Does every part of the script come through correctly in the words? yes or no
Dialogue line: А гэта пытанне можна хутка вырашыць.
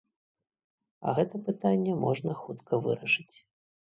yes